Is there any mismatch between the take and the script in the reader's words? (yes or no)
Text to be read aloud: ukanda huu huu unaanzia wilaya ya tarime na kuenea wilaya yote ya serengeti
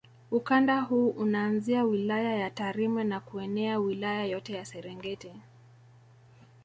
yes